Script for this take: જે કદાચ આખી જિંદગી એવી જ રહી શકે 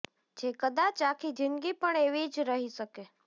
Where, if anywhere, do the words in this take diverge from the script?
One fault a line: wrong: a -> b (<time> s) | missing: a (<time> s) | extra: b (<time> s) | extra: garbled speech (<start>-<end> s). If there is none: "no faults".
extra: પણ (1.8 s)